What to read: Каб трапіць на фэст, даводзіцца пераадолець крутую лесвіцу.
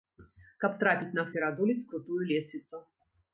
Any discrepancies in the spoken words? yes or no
yes